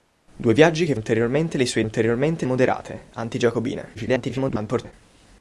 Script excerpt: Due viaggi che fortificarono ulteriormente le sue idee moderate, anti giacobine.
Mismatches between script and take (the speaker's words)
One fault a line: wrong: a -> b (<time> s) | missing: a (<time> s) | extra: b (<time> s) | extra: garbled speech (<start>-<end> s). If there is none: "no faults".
missing: fortificarono (1.0 s)
wrong: idee -> ulteriormente (1.8 s)
extra: garbled speech (3.9-4.9 s)